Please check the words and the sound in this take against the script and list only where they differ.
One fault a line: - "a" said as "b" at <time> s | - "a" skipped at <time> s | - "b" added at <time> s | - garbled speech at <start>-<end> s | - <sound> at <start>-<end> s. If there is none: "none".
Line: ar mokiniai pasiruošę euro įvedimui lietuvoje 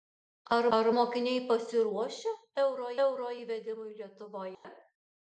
- "ar" added at 0.8 s
- "euro" added at 3.1 s
- dropout at 4.5-4.6 s